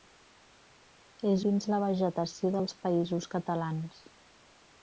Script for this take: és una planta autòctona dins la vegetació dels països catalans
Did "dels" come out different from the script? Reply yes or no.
no